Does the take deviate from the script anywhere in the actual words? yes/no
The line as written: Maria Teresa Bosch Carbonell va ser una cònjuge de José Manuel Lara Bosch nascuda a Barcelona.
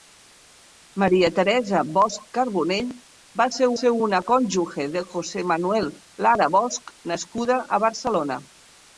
yes